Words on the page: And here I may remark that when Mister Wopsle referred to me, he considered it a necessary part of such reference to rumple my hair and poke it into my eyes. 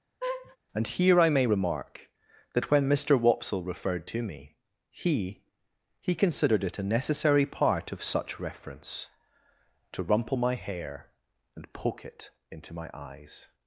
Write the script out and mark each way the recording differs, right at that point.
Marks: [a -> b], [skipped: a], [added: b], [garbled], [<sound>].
[laugh] And here I may remark that when Mister Wopsle referred to me, he [added: he] considered it a necessary part of such reference to rumple my hair and poke it into my eyes.